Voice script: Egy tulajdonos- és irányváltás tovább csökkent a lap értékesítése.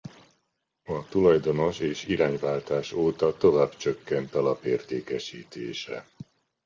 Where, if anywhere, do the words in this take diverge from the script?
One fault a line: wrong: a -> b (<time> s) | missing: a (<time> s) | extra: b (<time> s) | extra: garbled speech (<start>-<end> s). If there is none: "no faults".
wrong: Egy -> A (0.8 s)
extra: óta (2.9 s)